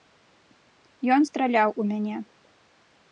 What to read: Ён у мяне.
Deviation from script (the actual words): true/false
true